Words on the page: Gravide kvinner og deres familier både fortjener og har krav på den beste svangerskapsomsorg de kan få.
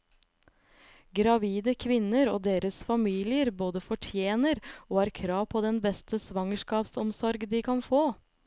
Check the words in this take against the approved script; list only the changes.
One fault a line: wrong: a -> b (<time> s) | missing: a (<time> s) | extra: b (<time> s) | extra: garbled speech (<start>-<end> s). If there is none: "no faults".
no faults